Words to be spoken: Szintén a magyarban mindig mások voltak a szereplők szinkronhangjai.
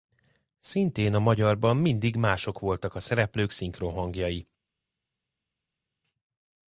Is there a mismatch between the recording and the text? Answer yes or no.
no